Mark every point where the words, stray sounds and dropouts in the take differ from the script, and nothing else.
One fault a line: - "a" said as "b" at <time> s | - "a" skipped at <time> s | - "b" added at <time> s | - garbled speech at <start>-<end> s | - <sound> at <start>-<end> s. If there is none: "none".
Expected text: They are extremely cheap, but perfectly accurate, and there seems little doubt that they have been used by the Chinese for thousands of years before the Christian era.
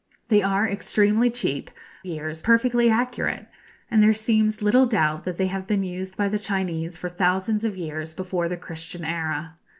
- "but" said as "years" at 2.1 s